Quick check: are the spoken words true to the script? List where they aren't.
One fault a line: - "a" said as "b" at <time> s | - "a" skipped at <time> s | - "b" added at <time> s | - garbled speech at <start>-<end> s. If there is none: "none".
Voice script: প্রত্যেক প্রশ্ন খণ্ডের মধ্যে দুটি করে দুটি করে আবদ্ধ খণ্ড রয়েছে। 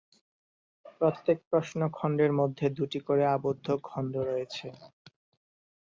- "দুটি করে" skipped at 3.2 s